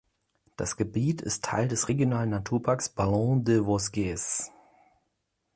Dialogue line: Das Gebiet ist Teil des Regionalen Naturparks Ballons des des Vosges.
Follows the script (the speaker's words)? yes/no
no